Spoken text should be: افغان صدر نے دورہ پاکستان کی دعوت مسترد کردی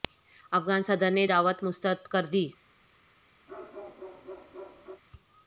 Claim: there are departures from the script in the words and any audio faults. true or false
true